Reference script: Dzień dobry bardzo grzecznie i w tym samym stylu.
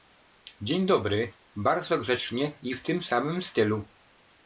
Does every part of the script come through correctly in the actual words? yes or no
yes